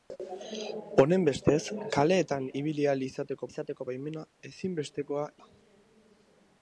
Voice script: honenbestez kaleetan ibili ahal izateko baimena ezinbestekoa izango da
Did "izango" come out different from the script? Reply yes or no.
yes